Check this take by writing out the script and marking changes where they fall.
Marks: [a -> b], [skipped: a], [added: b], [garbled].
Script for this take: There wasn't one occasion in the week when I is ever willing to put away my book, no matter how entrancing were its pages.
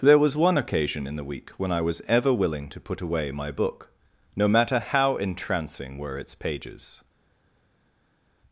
There [wasn't -> was] one occasion in the week when I [is -> was] ever willing to put away my book, no matter how entrancing were its pages.